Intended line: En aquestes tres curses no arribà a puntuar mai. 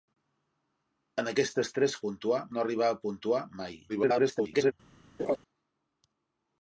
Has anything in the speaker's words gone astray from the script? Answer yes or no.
yes